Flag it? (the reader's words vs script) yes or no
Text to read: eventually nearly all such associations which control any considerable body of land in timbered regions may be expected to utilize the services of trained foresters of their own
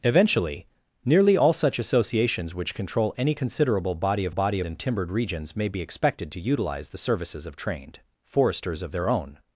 yes